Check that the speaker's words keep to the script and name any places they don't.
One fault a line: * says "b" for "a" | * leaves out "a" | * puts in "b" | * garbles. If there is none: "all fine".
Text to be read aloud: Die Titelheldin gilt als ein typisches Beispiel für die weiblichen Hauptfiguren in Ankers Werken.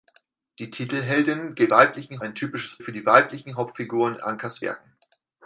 * says "weiblichen" for "als"
* leaves out "Beispiel"
* leaves out "in"